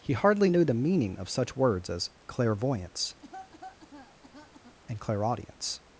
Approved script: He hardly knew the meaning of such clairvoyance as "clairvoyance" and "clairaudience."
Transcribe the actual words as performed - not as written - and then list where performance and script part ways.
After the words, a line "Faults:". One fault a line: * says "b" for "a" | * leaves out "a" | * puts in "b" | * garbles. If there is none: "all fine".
He hardly knew the meaning of such words as "clairvoyance" and "clairaudience."
Faults:
* says "words" for "clairvoyance"